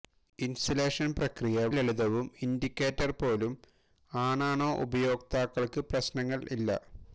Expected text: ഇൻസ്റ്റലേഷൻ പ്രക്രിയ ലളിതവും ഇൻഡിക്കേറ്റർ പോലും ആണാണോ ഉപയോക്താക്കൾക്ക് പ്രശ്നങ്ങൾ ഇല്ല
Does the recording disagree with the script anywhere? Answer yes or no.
no